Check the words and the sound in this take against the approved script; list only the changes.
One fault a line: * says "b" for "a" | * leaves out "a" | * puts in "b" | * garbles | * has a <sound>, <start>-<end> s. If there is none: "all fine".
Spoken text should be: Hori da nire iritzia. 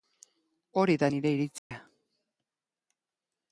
* has a dropout, 1.6-1.7 s